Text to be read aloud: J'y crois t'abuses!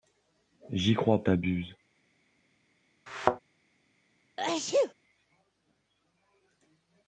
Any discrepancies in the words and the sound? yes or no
yes